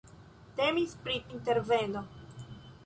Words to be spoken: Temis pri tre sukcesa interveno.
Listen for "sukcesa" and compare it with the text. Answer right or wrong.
wrong